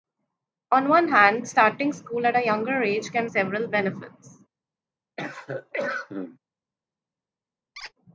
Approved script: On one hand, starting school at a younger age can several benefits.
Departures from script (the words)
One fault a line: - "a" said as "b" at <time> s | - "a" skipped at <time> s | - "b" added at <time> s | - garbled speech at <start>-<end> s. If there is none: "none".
none